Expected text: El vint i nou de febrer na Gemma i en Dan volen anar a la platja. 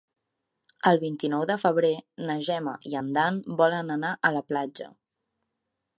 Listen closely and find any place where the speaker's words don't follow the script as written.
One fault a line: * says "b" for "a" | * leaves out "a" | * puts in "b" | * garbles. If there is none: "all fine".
all fine